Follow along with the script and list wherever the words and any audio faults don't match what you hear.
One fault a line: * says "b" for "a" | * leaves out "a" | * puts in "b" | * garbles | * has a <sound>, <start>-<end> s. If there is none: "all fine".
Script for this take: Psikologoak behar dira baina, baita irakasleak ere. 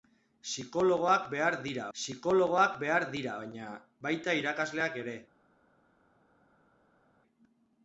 * puts in "psikologoak behar dira"